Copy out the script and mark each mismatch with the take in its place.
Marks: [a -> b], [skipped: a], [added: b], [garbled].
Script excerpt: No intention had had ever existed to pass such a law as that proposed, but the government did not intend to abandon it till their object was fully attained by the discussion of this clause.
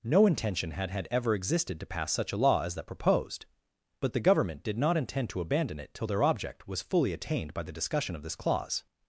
No intention had had ever existed to pass such a law as that proposed, but the government did not intend to abandon it till their object was fully attained by the discussion of this clause.